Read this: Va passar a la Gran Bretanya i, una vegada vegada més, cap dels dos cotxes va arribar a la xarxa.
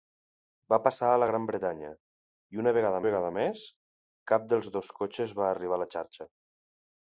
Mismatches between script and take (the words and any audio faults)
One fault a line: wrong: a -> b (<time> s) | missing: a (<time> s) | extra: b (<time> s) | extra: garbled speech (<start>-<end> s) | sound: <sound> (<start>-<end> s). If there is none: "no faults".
no faults